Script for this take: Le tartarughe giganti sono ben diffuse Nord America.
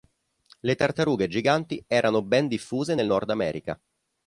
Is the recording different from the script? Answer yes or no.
yes